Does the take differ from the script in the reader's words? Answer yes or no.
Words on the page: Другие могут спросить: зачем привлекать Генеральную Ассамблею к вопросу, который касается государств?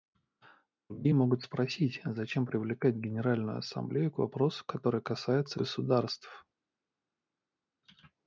no